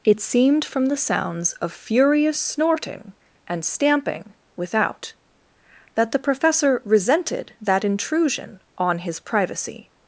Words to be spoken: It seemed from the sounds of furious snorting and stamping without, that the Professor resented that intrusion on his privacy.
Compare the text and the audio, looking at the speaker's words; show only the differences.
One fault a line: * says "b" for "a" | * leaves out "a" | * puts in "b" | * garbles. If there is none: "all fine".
all fine